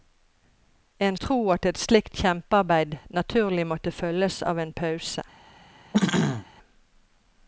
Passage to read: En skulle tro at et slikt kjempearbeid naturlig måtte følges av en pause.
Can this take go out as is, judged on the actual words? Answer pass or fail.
fail